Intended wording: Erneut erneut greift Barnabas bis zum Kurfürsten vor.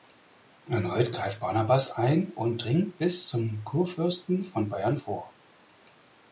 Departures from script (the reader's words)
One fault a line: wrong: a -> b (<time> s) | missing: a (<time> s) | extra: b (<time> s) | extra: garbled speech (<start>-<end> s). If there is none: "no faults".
missing: erneut (1.1 s)
extra: ein und dringt (1.9 s)
extra: von Bayern (4.5 s)